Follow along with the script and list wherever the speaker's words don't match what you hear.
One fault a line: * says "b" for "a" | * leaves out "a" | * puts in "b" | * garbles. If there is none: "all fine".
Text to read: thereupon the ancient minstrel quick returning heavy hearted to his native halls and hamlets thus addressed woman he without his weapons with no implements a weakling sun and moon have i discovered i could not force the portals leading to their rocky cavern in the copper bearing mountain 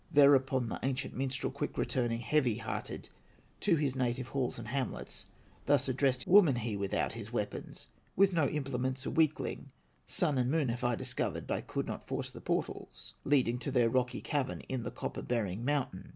all fine